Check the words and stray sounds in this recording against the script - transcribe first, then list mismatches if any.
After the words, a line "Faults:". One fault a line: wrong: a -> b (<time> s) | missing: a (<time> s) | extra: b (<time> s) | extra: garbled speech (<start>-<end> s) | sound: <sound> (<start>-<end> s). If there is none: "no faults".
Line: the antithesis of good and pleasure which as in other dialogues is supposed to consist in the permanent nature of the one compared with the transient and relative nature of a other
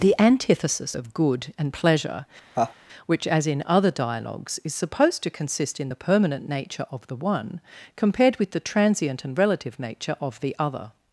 the antithesis of good and pleasure which as in other dialogues is supposed to consist in the permanent nature of the one compared with the transient and relative nature of the other
Faults:
sound: laugh (2.5-2.7 s)
wrong: a -> the (10.4 s)